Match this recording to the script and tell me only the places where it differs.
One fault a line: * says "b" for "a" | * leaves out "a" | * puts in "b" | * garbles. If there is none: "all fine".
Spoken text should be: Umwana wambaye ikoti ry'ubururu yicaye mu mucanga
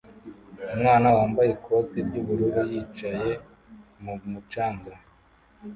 all fine